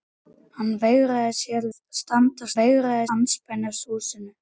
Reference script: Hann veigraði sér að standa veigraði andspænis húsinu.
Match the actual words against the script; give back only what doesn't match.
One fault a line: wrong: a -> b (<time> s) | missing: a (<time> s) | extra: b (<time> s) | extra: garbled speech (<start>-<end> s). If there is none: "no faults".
no faults